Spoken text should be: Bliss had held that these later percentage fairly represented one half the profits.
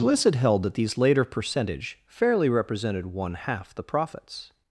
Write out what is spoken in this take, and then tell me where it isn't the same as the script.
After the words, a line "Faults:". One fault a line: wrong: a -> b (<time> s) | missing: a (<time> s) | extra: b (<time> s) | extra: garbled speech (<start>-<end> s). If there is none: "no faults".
Bliss had held that these later percentage fairly represented one half the profits.
Faults:
no faults